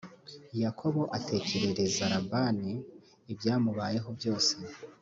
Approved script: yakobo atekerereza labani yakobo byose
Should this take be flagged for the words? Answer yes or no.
yes